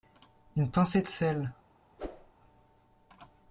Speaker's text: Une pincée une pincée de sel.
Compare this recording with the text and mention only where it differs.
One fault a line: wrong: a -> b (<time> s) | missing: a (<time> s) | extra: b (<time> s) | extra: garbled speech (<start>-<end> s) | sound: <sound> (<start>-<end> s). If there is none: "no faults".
missing: une pincée (1.0 s)
sound: whoosh (2.0-2.3 s)